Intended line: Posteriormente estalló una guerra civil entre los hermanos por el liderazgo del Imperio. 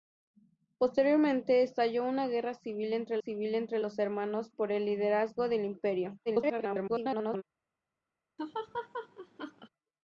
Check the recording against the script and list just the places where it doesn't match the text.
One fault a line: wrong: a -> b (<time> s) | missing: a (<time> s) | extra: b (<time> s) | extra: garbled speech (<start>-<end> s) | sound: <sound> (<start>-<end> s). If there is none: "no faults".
extra: civil entre (3.2 s)
extra: garbled speech (6.3-7.4 s)
sound: laugh (8.4-9.7 s)